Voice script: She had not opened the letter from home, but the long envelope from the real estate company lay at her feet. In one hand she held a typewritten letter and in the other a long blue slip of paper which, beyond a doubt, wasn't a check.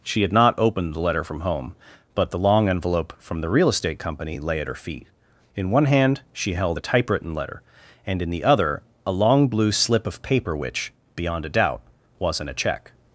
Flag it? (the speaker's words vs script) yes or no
no